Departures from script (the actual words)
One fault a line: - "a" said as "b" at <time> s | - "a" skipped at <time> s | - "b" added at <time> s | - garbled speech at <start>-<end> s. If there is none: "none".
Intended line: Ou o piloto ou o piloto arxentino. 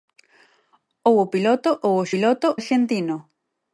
none